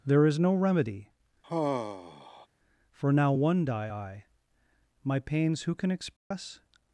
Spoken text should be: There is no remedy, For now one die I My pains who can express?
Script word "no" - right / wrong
right